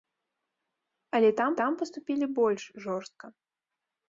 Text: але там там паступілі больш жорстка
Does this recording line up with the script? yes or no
yes